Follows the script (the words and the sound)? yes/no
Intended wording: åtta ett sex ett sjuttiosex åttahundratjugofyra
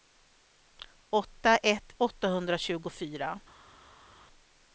no